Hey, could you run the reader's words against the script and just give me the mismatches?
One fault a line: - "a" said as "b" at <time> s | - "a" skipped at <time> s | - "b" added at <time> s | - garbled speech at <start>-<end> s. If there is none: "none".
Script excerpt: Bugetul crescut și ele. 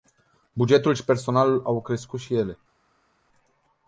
- "și personalul au" added at 0.9 s